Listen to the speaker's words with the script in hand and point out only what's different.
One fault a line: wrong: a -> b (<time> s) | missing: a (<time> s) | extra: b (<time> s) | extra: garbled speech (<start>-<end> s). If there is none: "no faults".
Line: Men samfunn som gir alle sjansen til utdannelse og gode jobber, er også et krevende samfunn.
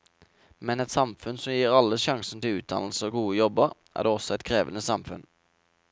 extra: et (0.8 s)